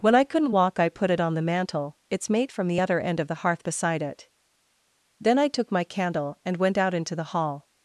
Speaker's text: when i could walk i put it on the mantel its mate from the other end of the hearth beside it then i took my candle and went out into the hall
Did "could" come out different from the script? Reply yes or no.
yes